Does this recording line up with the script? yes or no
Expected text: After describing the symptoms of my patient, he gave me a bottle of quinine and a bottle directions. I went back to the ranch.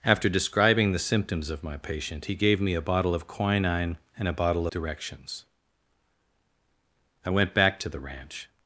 yes